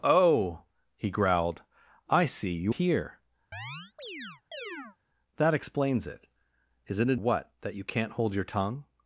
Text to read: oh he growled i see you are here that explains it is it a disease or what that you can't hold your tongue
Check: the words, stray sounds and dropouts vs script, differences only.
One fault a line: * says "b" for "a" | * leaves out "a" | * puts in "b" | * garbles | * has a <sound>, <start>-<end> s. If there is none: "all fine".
* leaves out "are"
* has a chirp, 3.5-5.0 s
* leaves out "disease or"